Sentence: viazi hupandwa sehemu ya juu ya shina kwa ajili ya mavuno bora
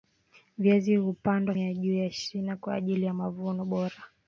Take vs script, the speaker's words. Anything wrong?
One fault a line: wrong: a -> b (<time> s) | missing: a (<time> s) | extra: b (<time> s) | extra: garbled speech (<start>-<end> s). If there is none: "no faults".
missing: sehemu (1.6 s)